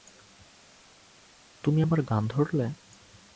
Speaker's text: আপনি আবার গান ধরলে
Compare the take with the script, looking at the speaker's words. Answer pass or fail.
fail